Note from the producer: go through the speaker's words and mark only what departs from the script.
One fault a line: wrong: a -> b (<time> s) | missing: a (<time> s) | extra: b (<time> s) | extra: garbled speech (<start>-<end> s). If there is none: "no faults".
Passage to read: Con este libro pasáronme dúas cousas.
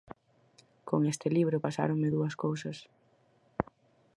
no faults